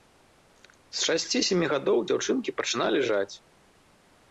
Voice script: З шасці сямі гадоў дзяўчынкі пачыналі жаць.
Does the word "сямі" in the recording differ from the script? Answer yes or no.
no